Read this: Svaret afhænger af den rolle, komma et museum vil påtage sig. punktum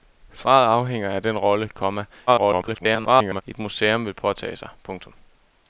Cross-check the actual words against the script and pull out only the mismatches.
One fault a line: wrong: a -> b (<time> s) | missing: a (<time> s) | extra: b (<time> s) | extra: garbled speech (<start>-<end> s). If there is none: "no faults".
extra: garbled speech (2.3-3.4 s)